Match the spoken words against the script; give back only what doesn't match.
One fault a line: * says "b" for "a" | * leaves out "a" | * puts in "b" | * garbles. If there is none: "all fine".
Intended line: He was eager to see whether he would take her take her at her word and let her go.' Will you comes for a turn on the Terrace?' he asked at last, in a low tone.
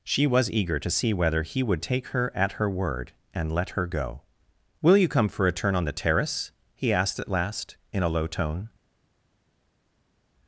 * says "She" for "He"
* leaves out "take her"
* says "come" for "comes"